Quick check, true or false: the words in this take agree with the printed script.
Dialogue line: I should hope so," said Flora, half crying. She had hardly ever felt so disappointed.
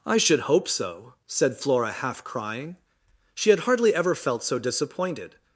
true